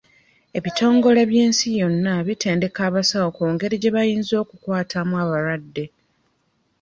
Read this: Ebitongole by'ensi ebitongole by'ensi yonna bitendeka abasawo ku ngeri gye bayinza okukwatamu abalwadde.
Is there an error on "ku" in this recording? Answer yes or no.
no